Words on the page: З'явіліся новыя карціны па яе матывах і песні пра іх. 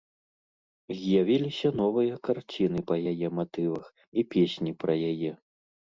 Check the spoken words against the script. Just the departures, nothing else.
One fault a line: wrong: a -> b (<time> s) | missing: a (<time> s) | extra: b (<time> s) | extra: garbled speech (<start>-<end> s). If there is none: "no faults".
wrong: іх -> яе (5.1 s)